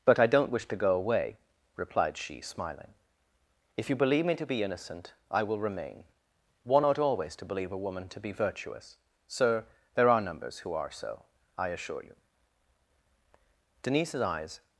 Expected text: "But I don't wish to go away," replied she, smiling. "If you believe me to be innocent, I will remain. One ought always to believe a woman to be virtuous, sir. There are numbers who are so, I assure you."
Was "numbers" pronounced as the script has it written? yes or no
yes